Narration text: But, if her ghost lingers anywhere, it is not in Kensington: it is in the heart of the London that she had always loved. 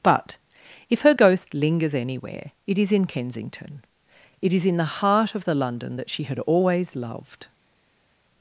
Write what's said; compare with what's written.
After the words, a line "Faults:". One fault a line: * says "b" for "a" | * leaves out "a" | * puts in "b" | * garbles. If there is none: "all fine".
But, if her ghost lingers anywhere, it is in Kensington: it is in the heart of the London that she had always loved.
Faults:
* leaves out "not"